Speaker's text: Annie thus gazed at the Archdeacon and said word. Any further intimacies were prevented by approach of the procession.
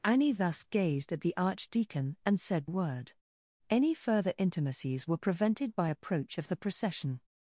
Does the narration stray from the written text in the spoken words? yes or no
no